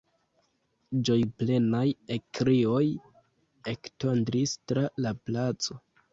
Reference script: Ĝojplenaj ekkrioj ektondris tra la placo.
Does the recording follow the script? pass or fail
pass